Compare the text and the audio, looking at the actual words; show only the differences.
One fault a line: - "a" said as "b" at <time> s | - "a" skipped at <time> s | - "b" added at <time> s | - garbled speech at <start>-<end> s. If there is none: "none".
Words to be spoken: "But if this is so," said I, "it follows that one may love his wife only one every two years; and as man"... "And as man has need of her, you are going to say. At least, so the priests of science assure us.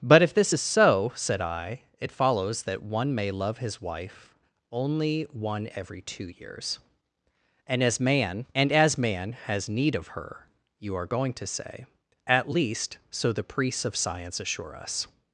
none